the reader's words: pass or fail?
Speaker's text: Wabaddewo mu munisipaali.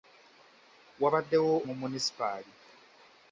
pass